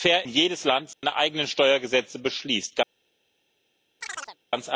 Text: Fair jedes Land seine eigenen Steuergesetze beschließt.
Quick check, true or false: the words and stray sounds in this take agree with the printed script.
false